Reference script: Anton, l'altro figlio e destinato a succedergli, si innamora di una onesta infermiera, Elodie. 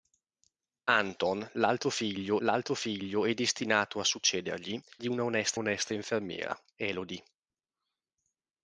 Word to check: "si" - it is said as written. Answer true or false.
false